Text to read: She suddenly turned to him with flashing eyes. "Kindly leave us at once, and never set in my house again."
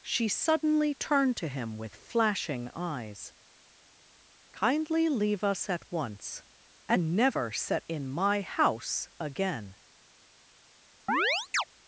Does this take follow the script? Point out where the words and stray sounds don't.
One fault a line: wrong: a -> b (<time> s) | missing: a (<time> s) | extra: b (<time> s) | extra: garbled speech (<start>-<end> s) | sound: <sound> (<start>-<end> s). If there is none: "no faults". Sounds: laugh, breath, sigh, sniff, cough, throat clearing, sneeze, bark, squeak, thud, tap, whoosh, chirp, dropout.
sound: chirp (11.1-11.6 s)